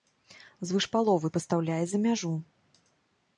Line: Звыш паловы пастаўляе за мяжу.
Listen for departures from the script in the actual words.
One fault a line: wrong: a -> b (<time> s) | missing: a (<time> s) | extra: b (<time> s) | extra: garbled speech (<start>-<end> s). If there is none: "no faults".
no faults